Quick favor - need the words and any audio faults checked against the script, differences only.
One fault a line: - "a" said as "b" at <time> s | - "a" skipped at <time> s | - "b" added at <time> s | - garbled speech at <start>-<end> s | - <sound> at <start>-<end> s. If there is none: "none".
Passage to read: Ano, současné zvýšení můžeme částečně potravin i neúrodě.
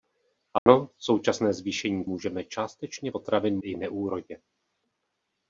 - dropout at 0.6-0.7 s